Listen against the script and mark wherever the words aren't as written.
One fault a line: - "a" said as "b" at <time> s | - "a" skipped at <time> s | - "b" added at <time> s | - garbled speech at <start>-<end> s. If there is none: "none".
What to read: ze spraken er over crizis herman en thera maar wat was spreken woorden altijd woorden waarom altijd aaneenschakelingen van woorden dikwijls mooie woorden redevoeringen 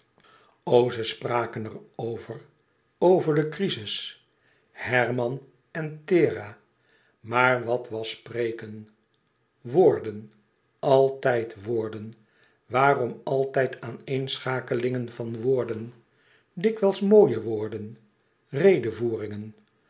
- "over de" added at 3.0 s